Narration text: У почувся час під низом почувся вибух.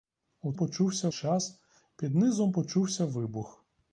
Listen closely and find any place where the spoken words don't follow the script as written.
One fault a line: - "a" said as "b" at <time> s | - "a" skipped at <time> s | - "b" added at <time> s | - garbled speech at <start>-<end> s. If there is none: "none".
none